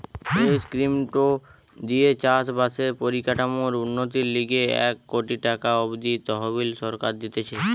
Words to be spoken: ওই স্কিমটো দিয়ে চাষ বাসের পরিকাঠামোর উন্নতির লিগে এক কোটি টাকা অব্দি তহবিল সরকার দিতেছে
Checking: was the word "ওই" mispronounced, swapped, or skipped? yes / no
yes